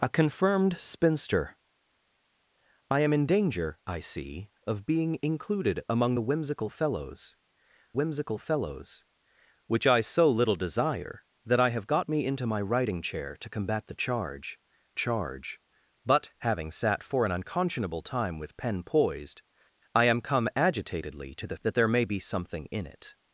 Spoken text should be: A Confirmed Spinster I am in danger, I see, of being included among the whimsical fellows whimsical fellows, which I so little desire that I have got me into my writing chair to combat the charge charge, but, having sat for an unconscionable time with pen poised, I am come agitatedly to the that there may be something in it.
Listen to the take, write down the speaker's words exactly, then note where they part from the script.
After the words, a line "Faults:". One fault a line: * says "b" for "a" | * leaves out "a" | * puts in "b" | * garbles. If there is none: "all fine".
A Confirmed Spinster I am in danger, I see, of being included among the whimsical fellows whimsical fellows, which I so little desire that I have got me into my writing chair to combat the charge charge, but, having sat for an unconscionable time with pen poised, I am come agitatedly to the that there may be something in it.
Faults:
all fine